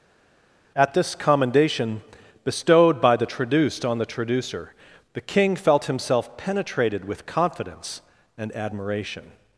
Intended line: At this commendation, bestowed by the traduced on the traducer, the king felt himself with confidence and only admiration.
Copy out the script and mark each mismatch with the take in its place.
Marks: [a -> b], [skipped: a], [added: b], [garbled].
At this commendation, bestowed by the traduced on the traducer, the king felt himself [added: penetrated] with confidence and [skipped: only] admiration.